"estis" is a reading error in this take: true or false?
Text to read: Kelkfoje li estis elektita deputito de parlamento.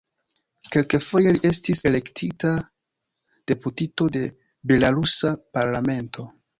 false